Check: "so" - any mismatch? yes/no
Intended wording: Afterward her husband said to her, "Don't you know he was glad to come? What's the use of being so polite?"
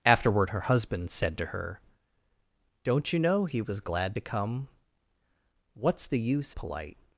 yes